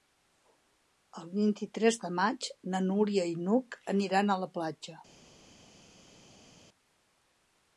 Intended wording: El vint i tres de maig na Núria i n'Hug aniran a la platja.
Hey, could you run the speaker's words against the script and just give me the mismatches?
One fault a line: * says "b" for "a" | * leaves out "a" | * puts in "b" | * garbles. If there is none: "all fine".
all fine